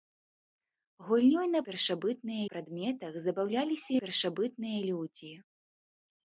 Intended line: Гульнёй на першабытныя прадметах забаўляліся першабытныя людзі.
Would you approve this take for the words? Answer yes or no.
yes